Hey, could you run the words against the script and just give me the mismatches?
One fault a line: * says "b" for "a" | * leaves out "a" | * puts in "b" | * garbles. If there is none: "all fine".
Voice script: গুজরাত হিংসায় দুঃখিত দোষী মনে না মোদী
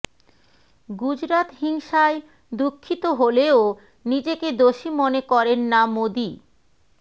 * puts in "হলেও নিজেকে"
* puts in "করেন"